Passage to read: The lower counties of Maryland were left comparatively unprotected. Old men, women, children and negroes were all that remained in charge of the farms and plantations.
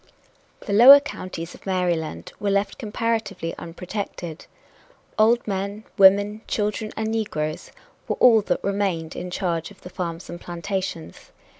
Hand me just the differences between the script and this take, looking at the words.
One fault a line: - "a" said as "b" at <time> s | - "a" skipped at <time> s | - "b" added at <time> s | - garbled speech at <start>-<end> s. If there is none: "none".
none